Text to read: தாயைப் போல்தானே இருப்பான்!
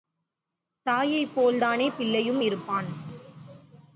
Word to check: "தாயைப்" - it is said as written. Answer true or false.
true